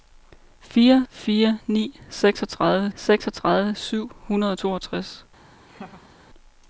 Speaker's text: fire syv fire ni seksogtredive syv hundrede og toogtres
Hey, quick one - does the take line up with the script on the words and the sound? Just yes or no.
no